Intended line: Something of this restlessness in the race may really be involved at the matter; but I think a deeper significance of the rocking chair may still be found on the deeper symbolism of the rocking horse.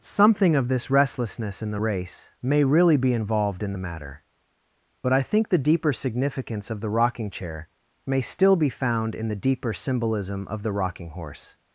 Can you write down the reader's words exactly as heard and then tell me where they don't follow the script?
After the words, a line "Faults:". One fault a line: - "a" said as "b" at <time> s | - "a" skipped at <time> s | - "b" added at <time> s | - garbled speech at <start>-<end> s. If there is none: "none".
Something of this restlessness in the race may really be involved in the matter; but I think the deeper significance of the rocking chair may still be found in the deeper symbolism of the rocking horse.
Faults:
- "at" said as "in" at 3.6 s
- "a" said as "the" at 5.5 s
- "on" said as "in" at 9.2 s